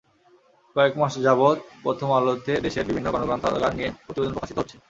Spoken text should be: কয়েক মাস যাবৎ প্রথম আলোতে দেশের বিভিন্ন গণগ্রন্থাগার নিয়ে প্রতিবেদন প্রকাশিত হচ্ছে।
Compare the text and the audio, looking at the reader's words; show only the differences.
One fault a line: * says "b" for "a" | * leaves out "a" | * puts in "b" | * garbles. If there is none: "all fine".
all fine